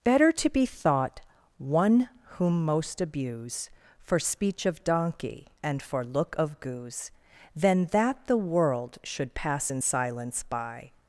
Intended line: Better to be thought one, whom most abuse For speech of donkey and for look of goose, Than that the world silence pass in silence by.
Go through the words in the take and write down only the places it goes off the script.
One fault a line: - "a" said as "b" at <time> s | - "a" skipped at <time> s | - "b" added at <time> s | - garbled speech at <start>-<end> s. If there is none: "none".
- "silence" said as "should" at 9.0 s